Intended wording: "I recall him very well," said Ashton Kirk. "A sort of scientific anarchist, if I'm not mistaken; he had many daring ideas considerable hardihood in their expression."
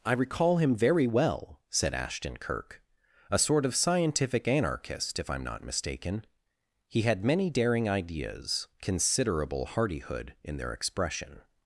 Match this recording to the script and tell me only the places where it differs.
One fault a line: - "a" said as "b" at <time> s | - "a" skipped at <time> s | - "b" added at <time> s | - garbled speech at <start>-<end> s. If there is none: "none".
none